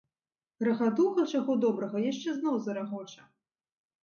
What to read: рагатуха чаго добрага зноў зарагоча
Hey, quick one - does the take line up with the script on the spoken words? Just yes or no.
no